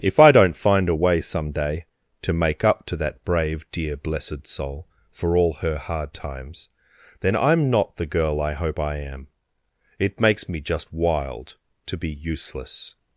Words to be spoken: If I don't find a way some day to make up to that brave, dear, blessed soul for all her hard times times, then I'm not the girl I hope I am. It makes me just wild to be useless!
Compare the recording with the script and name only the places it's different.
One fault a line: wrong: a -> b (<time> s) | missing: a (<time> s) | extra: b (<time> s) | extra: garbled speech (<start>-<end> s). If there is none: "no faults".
missing: times (6.7 s)